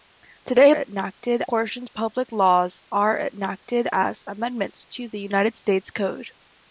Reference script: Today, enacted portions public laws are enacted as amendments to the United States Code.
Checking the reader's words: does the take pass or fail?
pass